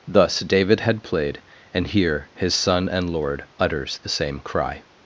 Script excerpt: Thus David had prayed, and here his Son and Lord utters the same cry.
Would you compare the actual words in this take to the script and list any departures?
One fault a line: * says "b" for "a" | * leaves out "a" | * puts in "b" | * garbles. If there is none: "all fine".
* says "played" for "prayed"